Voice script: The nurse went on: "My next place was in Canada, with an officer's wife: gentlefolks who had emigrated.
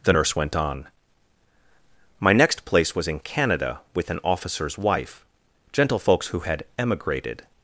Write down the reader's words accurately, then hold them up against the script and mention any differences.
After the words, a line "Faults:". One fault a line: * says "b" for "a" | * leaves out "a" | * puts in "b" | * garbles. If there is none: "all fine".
The nurse went on: "My next place was in Canada, with an officer's wife: gentlefolks who had emigrated.
Faults:
all fine